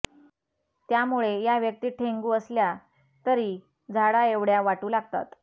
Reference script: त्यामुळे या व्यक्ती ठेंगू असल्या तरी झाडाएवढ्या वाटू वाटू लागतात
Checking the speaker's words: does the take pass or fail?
fail